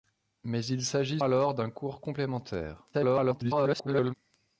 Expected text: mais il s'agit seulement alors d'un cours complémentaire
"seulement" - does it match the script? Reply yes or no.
no